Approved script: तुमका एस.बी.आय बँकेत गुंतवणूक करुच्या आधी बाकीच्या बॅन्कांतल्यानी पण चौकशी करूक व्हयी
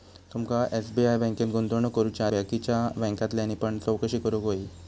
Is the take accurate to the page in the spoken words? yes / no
no